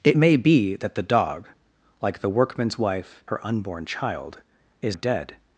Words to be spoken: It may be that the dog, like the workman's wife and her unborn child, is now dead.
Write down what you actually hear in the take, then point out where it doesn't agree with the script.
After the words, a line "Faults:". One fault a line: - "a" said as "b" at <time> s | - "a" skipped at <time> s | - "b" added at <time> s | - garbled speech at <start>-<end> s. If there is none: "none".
It may be that the dog, like the workman's wife her unborn child, is dead.
Faults:
- "and" skipped at 3.2 s
- "now" skipped at 5.0 s